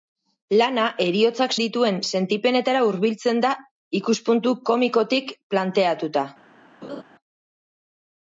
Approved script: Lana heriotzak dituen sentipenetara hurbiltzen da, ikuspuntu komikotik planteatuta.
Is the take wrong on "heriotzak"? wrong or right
right